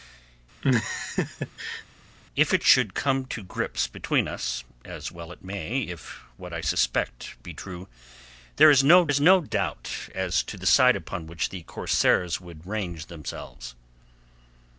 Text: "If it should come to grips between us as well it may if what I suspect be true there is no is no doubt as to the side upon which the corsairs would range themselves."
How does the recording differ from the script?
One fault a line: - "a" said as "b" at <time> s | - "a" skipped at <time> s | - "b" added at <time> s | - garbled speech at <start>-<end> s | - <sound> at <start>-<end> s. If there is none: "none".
- laugh at 0.6-1.8 s